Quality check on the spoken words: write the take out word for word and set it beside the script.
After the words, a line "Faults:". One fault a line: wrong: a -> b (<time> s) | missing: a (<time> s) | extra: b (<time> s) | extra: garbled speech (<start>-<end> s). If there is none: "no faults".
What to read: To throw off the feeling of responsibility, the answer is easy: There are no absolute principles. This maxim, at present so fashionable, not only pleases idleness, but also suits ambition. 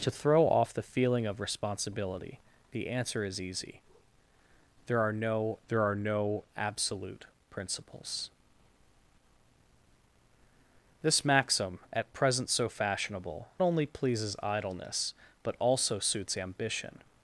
To throw off the feeling of responsibility, the answer is easy: There are no There are no absolute principles. This maxim, at present so fashionable, only pleases idleness, but also suits ambition.
Faults:
extra: There are no (5.7 s)
missing: not (13.5 s)